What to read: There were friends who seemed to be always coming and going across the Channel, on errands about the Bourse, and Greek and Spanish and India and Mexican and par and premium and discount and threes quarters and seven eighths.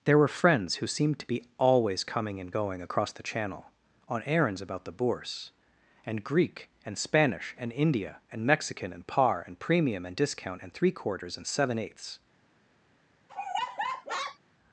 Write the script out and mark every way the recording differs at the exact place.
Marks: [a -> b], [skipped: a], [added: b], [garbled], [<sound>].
There were friends who seemed to be always coming and going across the Channel, on errands about the Bourse, and Greek and Spanish and India and Mexican and par and premium and discount and [threes -> three] quarters and seven eighths. [laugh]